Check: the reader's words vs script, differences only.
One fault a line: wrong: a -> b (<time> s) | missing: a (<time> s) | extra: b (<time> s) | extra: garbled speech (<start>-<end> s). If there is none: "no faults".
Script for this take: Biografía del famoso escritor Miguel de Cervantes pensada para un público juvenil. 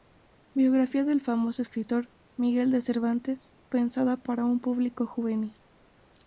no faults